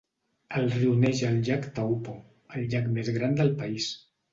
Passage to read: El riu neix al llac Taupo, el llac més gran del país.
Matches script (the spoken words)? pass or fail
pass